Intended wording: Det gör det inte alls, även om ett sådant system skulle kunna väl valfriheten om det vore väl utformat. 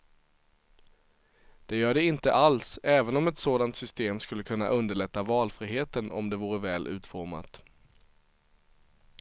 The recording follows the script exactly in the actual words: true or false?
false